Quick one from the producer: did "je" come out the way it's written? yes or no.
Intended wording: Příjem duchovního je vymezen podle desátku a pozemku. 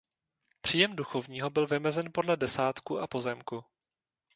no